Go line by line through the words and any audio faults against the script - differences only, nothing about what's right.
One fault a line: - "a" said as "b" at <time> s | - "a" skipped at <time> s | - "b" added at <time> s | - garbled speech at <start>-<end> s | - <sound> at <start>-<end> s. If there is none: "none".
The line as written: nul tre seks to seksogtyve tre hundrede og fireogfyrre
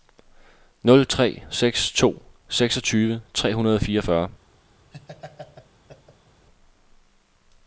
- laugh at 4.9-6.5 s